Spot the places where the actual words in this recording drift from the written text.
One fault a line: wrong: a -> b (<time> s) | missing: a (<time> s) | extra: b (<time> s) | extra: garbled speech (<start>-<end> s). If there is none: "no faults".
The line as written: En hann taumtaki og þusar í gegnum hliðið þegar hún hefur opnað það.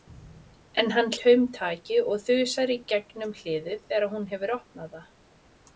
no faults